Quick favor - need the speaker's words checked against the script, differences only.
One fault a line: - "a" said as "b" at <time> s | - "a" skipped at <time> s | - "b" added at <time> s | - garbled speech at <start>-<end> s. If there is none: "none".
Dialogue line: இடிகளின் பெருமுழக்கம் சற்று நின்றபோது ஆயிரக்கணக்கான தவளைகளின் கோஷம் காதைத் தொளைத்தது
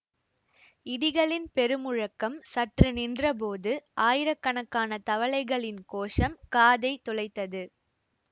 none